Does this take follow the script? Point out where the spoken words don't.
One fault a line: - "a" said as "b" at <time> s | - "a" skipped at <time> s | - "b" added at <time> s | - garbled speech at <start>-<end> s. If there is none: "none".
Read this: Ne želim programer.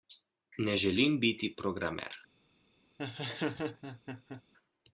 - "biti" added at 1.2 s